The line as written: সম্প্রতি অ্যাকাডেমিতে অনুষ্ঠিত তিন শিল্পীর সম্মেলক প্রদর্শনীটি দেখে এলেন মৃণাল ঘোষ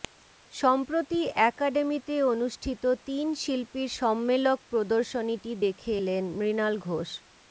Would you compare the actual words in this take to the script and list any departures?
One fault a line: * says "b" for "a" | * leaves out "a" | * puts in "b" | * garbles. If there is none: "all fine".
all fine